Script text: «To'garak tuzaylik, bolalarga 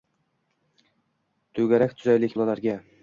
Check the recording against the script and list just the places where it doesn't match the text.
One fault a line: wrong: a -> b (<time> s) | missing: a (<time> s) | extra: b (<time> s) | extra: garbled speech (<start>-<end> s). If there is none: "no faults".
no faults